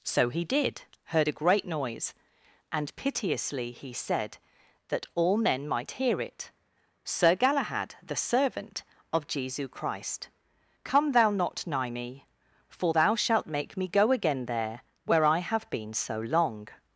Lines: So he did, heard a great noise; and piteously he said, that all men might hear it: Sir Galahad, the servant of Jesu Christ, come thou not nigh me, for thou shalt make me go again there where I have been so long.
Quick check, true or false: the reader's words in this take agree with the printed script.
true